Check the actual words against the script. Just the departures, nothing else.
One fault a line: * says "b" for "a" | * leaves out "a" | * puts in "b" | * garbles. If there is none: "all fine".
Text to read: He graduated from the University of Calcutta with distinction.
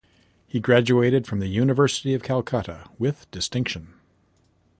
all fine